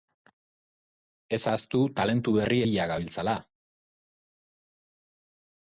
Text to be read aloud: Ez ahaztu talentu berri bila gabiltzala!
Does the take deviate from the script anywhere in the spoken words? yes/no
no